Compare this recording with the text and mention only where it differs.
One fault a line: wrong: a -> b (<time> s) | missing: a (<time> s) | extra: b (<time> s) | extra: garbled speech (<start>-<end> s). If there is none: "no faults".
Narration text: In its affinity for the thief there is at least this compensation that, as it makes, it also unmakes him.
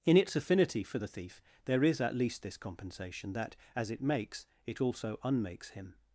no faults